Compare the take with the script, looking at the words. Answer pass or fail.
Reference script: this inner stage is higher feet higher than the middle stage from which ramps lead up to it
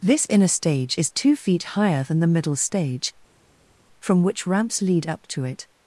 fail